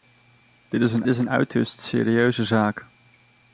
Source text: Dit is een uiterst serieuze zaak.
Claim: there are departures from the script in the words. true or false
true